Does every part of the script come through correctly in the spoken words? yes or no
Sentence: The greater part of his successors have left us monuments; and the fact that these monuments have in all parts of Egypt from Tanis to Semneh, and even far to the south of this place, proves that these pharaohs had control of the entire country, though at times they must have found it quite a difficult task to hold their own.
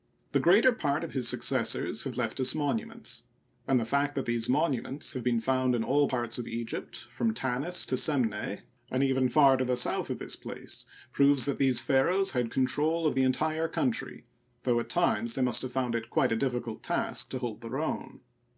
no